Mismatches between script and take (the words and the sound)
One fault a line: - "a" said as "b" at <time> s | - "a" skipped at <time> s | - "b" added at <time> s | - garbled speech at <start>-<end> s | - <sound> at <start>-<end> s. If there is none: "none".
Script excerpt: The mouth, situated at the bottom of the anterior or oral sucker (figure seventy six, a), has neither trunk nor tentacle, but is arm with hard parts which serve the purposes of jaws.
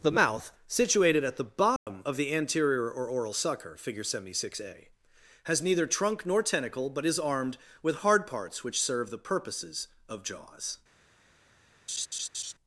- dropout at 1.8-1.9 s
- "arm" said as "armed" at 7.2 s
- laugh at 11.9-12.5 s